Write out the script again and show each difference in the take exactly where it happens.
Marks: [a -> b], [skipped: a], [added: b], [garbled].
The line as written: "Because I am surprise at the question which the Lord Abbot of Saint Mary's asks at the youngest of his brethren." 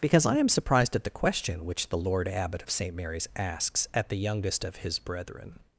"Because I am [surprise -> surprised] at the question which the Lord Abbot of Saint Mary's asks at the youngest of his brethren."